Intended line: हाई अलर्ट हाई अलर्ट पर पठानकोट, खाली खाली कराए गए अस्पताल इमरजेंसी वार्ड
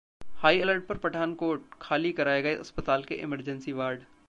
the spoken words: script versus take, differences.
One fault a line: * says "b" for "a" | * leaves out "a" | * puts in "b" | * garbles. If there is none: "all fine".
* leaves out "हाई अलर्ट"
* leaves out "खाली"
* puts in "के"